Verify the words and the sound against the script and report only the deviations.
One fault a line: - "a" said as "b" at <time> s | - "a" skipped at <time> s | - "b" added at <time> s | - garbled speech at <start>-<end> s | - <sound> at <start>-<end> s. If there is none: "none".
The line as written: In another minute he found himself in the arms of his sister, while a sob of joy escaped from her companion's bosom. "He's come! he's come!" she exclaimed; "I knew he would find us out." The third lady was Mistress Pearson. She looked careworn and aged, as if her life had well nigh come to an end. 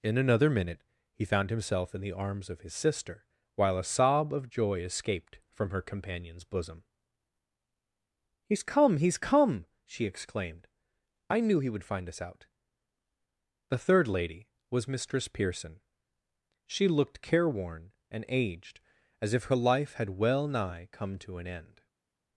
none